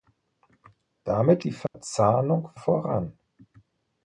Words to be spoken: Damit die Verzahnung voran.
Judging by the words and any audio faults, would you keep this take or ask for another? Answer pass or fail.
fail